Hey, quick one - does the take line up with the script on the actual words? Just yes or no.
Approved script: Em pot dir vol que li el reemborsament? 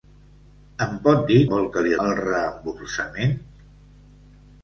yes